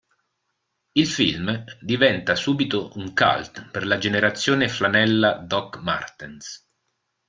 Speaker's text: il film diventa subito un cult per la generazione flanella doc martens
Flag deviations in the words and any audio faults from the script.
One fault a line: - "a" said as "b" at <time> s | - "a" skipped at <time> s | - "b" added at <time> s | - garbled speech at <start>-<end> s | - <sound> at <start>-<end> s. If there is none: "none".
none